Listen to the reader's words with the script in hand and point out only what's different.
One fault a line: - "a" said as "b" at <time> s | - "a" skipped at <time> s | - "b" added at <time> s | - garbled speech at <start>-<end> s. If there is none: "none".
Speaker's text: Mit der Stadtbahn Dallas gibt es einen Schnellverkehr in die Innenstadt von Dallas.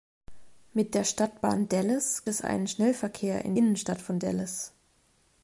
- "gibt" skipped at 2.2 s
- "die" skipped at 3.5 s